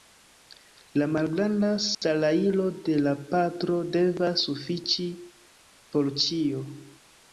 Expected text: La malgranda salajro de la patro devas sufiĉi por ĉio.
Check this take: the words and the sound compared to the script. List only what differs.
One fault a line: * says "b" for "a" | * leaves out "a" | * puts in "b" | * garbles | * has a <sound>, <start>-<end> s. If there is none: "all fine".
* has a dropout, 1.9-2.0 s